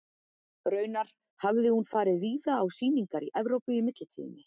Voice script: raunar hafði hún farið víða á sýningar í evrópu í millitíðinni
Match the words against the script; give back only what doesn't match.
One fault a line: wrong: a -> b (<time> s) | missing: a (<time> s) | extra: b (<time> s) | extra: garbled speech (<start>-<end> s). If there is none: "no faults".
no faults